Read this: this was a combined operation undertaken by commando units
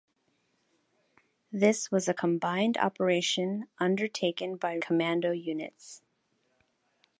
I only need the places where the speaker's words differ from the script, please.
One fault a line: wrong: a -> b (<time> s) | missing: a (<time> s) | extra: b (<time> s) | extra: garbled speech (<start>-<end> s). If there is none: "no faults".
no faults